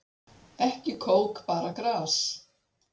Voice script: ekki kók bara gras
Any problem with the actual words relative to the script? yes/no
no